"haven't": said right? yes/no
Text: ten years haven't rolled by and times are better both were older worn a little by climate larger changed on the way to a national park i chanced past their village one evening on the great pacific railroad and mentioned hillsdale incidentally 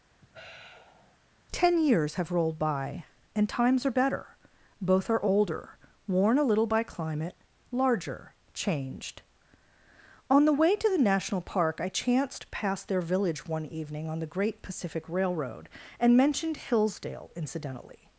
no